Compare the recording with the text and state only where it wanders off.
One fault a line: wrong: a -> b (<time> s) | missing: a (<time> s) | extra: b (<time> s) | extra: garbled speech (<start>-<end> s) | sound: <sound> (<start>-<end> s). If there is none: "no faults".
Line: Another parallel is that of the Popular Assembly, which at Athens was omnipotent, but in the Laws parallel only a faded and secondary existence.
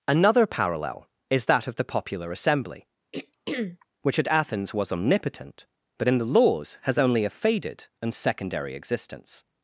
sound: throat clearing (3.1-3.9 s)
wrong: parallel -> has (6.8 s)